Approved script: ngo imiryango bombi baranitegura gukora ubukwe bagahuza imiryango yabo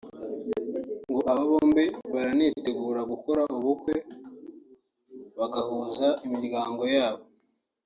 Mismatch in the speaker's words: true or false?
true